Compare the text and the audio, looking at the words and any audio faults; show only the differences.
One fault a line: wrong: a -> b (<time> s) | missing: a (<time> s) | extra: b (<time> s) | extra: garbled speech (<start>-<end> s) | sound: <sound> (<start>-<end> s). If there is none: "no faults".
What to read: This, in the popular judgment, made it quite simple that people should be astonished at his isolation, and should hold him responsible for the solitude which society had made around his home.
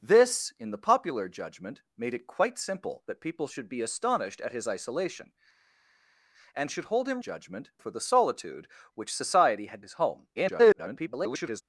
wrong: responsible -> judgment (7.2 s)
missing: made around (9.9 s)
extra: garbled speech (10.4-11.6 s)